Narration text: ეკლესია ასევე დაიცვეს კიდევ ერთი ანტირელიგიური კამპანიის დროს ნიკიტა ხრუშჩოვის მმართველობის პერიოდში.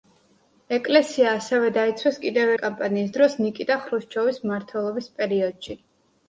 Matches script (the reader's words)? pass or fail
fail